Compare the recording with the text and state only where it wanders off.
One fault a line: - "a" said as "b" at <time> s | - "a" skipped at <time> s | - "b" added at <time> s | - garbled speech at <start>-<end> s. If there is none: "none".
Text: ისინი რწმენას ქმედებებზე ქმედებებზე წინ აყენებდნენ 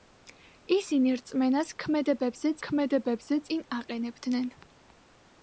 none